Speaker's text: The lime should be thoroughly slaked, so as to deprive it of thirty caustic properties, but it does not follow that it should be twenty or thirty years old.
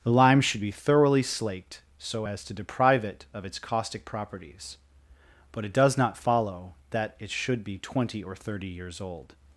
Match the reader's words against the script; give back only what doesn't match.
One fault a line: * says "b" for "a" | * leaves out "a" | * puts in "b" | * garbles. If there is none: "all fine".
* says "its" for "thirty"